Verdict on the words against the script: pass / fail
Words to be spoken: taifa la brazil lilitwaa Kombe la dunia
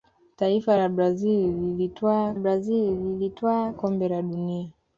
fail